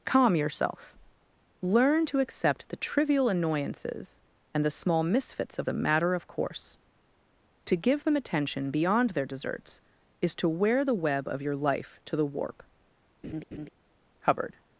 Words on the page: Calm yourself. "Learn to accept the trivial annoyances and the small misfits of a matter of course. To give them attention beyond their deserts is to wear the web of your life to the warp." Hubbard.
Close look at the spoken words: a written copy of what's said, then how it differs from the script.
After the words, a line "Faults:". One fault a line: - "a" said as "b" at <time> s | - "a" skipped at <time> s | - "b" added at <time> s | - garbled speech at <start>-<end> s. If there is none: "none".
Calm yourself. "Learn to accept the trivial annoyances and the small misfits of a matter of course. To give them attention beyond their deserts is to wear the web of your life to the warp." Hubbard.
Faults:
none